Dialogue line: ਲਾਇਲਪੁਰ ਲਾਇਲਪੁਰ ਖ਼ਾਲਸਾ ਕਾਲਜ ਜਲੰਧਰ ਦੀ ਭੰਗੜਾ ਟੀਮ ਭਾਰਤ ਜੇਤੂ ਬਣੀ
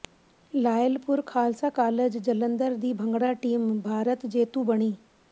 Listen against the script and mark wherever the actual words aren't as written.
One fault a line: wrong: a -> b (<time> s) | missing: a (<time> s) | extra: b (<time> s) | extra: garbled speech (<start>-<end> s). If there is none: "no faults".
missing: ਲਾਇਲਪੁਰ (1.2 s)